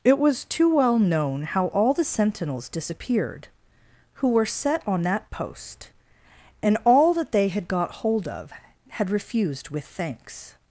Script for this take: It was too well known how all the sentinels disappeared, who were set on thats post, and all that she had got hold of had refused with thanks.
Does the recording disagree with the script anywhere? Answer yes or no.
yes